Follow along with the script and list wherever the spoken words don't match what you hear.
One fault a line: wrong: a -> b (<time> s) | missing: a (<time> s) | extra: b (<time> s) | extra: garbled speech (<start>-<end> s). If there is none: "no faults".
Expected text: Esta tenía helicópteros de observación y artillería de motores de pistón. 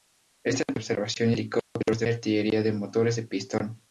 wrong: tenía -> observación (0.8 s)
missing: observación (2.1 s)